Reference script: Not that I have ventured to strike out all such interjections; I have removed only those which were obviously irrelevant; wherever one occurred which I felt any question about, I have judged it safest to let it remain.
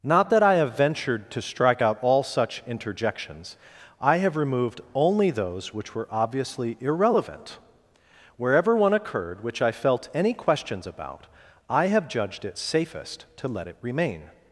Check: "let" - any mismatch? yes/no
no